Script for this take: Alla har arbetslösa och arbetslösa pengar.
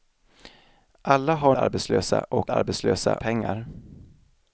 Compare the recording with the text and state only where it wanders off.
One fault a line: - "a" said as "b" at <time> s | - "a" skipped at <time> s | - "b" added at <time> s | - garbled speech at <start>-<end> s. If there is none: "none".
none